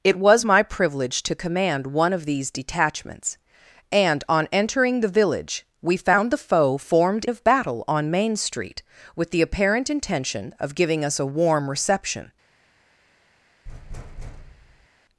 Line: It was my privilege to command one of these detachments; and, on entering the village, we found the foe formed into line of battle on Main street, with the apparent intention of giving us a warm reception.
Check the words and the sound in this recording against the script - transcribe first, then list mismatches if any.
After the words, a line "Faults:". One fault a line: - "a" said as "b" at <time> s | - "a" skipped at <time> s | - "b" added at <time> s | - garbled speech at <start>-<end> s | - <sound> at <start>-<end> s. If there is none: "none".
It was my privilege to command one of these detachments; and, on entering the village, we found the foe formed of battle on Main street, with the apparent intention of giving us a warm reception.
Faults:
- "into line" skipped at 7.3 s
- thud at 13.7-14.9 s